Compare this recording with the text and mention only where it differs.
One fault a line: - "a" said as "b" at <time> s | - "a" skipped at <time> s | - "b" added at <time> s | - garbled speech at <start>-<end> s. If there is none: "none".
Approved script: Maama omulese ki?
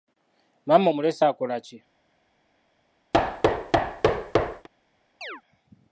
- "akola" added at 1.2 s